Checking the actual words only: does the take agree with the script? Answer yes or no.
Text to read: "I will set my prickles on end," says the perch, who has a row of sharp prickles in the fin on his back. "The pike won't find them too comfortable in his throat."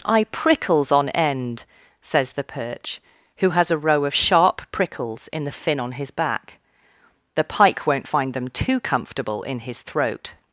no